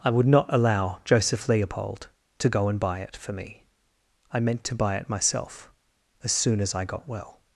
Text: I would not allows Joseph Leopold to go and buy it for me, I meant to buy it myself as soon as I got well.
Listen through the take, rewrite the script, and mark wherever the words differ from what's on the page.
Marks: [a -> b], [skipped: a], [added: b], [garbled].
I would not [allows -> allow] Joseph Leopold to go and buy it for me, I meant to buy it myself as soon as I got well.